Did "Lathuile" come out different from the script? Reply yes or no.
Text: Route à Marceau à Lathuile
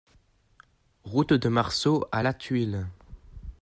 no